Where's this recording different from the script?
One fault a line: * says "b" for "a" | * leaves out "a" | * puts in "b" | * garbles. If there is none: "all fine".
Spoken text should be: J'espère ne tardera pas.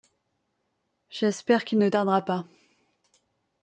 * puts in "qu'il"